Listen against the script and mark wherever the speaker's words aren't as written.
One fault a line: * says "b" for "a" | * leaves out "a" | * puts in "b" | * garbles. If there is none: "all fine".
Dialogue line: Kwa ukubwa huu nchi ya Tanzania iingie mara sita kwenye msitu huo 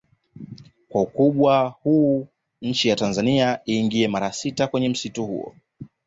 all fine